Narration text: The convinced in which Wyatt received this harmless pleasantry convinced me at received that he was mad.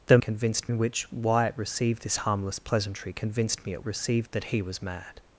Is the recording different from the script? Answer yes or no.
no